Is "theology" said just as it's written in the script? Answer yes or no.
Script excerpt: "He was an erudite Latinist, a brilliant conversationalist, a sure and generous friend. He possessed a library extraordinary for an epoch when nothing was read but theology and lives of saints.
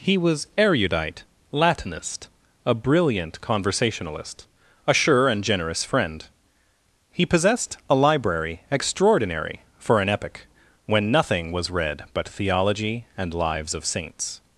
yes